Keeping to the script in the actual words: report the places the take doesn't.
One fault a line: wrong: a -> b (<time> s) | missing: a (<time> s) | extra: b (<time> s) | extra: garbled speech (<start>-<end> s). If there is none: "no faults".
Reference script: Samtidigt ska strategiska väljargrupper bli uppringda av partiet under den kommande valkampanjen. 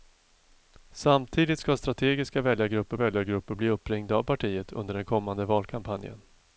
extra: väljargrupper (3.0 s)